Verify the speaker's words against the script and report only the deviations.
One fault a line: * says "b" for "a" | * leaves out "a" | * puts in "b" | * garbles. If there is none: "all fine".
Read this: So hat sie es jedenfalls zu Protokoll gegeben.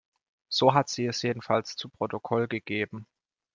all fine